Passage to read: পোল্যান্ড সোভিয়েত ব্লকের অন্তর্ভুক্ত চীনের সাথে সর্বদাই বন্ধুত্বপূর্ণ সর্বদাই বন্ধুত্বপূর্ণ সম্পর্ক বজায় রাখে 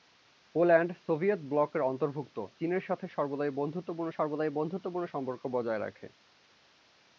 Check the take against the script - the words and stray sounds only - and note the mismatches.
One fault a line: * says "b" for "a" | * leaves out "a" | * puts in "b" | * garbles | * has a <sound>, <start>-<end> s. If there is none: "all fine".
all fine